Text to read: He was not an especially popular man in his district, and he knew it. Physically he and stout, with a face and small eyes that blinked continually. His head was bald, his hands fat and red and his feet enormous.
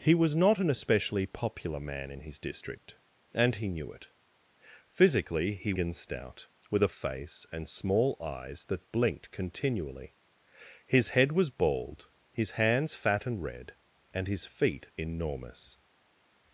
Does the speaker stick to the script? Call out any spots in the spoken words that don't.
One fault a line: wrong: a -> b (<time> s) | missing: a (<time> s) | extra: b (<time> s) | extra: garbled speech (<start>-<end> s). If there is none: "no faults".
no faults